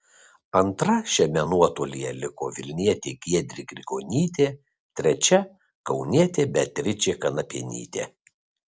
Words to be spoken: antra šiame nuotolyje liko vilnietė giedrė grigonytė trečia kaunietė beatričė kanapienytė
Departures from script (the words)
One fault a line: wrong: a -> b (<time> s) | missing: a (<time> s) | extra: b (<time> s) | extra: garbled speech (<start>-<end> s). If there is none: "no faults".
no faults